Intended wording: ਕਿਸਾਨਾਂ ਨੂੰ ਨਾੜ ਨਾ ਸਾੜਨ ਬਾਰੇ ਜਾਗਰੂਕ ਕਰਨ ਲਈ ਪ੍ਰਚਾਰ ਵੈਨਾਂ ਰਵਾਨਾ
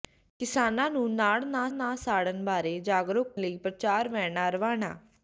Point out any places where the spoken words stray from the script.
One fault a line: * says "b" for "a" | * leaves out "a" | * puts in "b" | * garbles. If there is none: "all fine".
* puts in "ਨਾ"
* leaves out "ਕਰਨ"